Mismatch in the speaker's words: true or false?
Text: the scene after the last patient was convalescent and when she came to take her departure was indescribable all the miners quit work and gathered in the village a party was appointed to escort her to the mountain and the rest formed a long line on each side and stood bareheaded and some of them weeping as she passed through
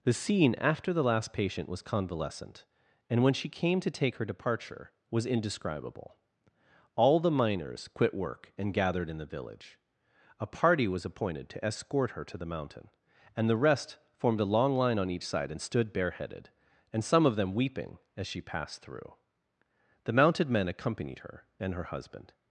true